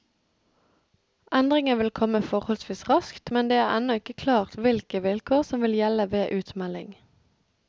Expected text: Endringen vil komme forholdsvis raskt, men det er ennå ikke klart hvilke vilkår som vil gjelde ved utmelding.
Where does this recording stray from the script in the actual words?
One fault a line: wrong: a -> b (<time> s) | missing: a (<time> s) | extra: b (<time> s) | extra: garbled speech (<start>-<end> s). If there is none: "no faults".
no faults